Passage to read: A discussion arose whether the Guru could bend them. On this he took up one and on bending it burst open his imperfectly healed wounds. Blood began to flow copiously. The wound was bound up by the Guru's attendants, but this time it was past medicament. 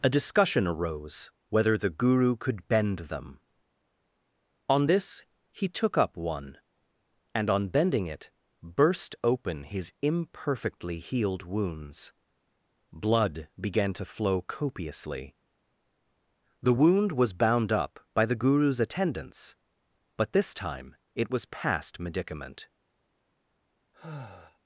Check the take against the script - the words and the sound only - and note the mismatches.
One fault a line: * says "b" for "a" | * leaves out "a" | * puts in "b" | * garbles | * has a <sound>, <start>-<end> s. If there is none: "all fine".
* has a sigh, 23.9-24.6 s